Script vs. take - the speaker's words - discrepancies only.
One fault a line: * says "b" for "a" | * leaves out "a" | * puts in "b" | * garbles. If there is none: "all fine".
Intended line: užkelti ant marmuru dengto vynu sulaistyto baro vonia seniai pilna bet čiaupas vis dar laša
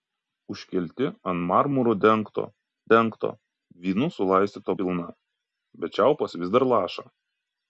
* puts in "dengto"
* leaves out "baro vonia seniai"